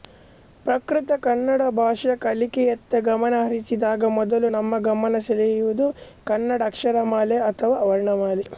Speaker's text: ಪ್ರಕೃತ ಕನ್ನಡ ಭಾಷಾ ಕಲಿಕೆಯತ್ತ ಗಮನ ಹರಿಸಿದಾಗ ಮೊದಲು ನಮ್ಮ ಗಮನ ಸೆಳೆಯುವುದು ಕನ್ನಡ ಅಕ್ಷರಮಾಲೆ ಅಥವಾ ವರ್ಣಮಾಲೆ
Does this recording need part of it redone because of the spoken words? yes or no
no